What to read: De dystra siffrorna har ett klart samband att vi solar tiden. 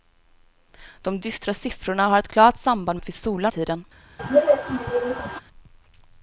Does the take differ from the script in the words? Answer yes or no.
no